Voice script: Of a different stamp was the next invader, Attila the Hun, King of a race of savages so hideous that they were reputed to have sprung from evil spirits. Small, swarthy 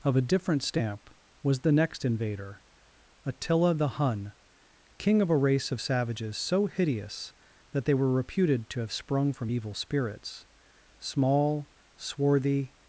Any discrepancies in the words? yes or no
no